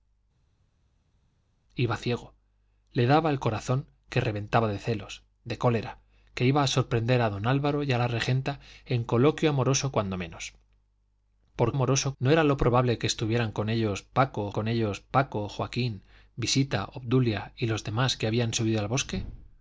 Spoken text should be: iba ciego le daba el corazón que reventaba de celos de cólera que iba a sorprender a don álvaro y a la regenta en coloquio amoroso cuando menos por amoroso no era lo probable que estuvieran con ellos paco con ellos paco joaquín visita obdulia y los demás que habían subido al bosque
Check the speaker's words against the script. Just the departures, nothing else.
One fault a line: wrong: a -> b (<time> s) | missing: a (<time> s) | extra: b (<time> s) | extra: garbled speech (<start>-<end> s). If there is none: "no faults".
no faults